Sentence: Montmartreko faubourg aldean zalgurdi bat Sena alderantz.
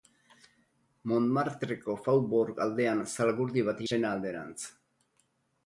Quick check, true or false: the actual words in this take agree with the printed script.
true